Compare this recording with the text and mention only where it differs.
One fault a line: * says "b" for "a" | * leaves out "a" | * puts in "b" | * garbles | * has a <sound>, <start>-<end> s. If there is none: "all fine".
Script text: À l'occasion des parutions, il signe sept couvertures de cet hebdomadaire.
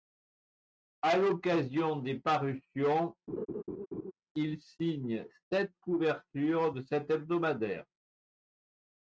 * has a laugh, 3.3-4.1 s